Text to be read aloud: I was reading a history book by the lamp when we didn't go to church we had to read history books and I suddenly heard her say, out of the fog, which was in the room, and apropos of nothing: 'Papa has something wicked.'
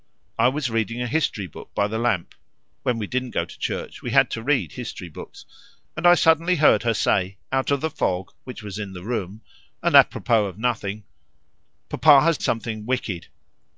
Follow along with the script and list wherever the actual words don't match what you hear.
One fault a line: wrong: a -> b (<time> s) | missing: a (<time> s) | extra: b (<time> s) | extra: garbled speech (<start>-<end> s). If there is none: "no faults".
no faults